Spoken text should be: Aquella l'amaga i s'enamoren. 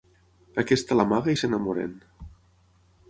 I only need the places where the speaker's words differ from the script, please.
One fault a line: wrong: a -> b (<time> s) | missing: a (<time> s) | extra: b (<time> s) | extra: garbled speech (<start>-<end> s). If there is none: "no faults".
wrong: Aquella -> Aquesta (0.6 s)